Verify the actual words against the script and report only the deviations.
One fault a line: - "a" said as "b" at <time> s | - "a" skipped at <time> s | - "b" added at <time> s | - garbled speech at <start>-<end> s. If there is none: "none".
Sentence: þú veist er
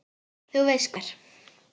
none